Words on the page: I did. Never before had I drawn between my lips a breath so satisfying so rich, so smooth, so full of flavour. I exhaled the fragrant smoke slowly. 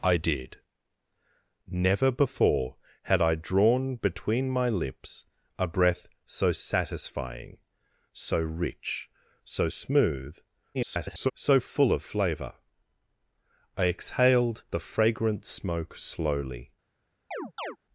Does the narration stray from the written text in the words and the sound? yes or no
yes